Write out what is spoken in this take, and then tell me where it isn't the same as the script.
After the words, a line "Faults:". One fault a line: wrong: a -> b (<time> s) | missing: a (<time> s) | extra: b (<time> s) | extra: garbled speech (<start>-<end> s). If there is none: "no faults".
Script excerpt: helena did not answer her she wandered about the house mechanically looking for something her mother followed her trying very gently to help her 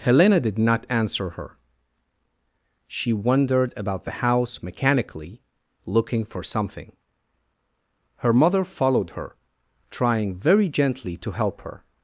helena did not answer her she wandered about the house mechanically looking for something her mother followed her trying very gently to help her
Faults:
no faults